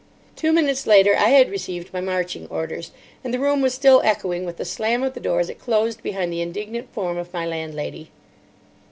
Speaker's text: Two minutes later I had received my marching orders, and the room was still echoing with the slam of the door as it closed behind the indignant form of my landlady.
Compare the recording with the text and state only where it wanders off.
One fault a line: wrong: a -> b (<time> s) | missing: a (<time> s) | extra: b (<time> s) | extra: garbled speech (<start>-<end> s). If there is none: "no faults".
no faults